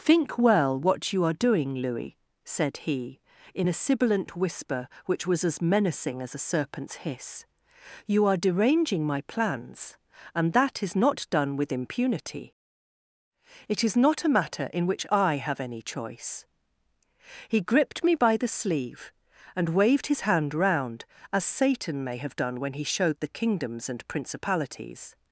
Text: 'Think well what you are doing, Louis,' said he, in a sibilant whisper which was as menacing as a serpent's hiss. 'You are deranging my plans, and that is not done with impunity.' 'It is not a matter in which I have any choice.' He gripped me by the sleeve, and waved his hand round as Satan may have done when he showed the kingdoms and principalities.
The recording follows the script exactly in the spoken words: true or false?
true